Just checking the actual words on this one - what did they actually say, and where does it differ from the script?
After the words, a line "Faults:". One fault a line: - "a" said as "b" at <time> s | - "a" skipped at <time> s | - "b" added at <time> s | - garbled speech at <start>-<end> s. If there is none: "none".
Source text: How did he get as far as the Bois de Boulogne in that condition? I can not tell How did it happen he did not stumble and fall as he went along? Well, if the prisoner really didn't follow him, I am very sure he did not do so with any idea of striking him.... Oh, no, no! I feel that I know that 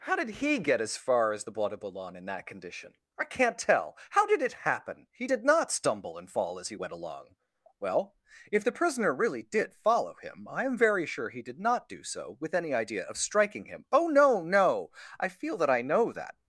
How did he get as far as the Bois de Boulogne in that condition? I can not tell How did it happen he did not stumble and fall as he went along? Well, if the prisoner really did follow him, I am very sure he did not do so with any idea of striking him.... Oh, no, no! I feel that I know that
Faults:
- "didn't" said as "did" at 9.4 s